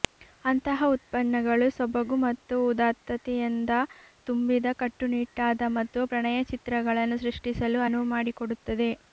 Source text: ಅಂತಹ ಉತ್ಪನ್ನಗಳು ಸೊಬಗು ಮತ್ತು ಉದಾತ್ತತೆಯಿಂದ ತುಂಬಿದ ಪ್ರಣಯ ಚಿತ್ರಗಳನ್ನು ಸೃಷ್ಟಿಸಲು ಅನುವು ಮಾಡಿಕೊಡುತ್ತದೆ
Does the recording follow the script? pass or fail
fail